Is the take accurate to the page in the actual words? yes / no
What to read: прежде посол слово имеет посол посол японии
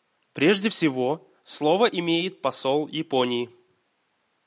no